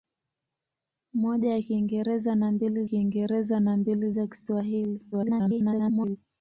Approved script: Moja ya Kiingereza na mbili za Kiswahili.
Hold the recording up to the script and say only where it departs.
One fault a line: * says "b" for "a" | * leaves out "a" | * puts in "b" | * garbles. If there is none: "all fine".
* puts in "Kiingereza na mbili"
* garbles